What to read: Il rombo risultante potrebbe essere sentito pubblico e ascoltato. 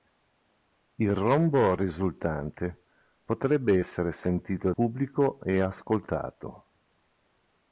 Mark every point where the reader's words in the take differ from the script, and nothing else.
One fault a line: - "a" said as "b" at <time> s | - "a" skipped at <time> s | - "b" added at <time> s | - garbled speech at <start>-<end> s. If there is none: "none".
none